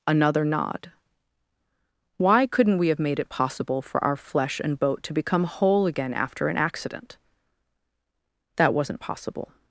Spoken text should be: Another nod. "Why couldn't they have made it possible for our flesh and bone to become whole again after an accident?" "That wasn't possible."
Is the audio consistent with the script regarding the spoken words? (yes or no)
no